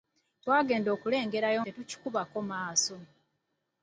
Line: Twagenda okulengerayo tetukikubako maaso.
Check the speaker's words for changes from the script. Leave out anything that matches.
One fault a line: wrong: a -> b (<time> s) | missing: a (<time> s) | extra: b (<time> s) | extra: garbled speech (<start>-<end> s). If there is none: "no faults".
no faults